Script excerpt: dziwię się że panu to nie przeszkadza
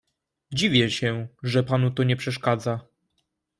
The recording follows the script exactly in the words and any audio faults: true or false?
true